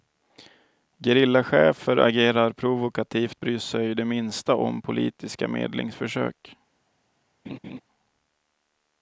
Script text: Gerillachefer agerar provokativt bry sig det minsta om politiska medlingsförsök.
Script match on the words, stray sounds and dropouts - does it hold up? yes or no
no